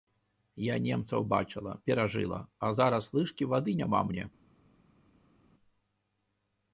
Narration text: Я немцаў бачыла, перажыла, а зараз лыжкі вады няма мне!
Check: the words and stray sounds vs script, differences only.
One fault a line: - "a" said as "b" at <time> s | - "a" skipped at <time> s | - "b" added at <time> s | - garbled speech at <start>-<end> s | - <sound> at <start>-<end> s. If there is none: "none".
none